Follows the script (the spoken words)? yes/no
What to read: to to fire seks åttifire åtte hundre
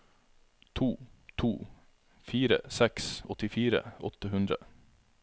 yes